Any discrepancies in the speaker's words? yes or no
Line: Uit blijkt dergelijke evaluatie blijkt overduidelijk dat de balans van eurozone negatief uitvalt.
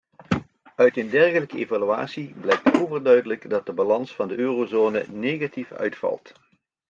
yes